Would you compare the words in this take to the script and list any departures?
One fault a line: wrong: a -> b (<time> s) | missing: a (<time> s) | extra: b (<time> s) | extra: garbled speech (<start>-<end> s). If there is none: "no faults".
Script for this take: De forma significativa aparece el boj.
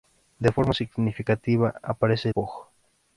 missing: el (2.3 s)